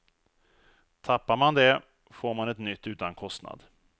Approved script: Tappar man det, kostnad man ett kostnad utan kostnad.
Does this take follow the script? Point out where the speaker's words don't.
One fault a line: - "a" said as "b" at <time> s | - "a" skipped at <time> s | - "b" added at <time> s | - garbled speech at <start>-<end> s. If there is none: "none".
- "kostnad" said as "får" at 2.1 s
- "kostnad" said as "nytt" at 2.6 s